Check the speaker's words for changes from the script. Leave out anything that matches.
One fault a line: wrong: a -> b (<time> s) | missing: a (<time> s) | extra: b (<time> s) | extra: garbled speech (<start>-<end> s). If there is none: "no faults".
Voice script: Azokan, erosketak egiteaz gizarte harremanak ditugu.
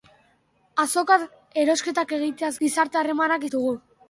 no faults